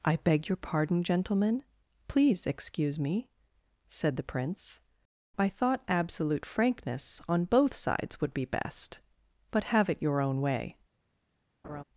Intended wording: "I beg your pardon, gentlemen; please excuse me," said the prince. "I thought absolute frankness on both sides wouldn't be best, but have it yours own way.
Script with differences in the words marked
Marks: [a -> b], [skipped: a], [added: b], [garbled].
"I beg your pardon, gentlemen; please excuse me," said the prince. "I thought absolute frankness on both sides [wouldn't -> would] be best, but have it [yours -> your] own way.